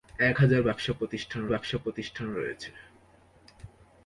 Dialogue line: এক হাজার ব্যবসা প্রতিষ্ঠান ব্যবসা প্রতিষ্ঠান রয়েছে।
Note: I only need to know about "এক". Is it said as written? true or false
true